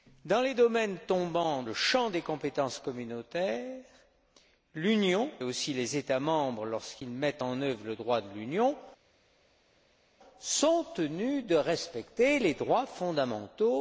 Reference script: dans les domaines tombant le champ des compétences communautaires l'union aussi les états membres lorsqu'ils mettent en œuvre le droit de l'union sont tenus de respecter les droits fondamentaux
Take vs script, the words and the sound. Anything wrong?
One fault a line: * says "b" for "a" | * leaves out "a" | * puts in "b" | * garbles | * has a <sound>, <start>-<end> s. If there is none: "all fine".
all fine